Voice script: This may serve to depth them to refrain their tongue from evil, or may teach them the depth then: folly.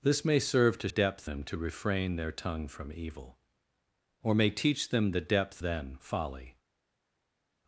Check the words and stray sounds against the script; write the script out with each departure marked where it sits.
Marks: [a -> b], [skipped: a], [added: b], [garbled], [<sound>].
This may serve to depth them to refrain their tongue from evil, or may teach them the depth then: folly.